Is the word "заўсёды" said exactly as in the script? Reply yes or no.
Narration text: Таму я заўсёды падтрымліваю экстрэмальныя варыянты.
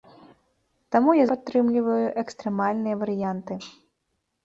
no